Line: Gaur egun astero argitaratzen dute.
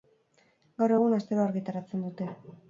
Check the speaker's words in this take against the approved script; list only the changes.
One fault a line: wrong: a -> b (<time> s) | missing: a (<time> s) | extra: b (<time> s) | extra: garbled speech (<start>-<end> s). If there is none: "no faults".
no faults